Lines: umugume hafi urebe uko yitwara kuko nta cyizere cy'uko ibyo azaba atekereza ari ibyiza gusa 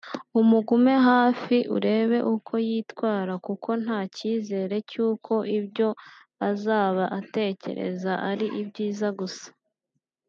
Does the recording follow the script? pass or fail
pass